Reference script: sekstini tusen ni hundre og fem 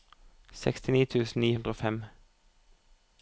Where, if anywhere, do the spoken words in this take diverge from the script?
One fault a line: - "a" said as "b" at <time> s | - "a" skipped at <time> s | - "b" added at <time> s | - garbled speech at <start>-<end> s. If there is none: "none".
none